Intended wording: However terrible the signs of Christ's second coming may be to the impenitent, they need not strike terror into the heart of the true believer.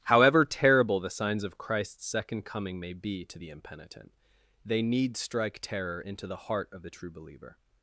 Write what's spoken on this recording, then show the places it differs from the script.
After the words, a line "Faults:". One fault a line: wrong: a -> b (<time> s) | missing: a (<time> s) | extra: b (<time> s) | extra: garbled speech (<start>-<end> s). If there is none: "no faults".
However terrible the signs of Christ's second coming may be to the impenitent, they need strike terror into the heart of the true believer.
Faults:
missing: not (5.2 s)